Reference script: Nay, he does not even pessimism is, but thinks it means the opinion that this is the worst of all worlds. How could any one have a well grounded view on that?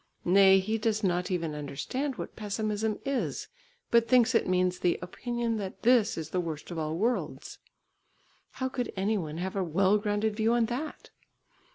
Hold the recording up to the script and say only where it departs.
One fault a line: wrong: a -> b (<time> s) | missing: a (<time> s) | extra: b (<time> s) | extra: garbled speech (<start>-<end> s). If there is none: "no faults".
extra: understand what (1.5 s)